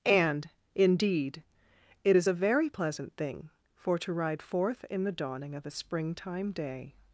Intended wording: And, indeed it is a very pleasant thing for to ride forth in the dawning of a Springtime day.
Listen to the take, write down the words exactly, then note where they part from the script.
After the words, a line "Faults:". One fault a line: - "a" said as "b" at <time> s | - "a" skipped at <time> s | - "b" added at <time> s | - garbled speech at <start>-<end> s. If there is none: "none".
And, indeed it is a very pleasant thing for to ride forth in the dawning of a Springtime day.
Faults:
none